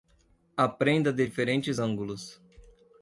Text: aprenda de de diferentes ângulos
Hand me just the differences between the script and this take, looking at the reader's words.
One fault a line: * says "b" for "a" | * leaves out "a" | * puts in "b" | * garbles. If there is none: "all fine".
* leaves out "de"